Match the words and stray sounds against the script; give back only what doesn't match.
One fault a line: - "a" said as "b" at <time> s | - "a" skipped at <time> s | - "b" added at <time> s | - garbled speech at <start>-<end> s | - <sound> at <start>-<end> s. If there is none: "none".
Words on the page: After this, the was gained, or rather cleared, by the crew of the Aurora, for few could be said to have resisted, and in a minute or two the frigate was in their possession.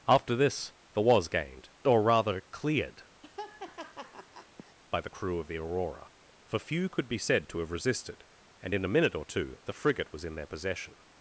- laugh at 3.2-4.8 s